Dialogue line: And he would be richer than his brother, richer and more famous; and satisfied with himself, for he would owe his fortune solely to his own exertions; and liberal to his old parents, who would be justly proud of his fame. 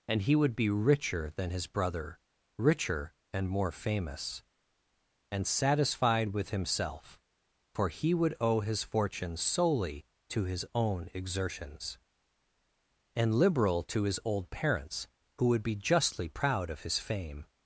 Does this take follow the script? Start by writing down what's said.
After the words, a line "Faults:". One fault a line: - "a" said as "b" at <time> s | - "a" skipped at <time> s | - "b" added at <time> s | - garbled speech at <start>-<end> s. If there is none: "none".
And he would be richer than his brother, richer and more famous; and satisfied with himself, for he would owe his fortune solely to his own exertions; and liberal to his old parents, who would be justly proud of his fame.
Faults:
none